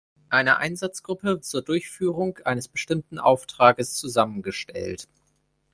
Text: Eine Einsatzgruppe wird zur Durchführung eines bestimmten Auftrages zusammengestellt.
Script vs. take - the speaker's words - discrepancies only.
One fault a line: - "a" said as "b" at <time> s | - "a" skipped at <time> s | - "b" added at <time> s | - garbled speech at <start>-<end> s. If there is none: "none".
- "wird" skipped at 1.4 s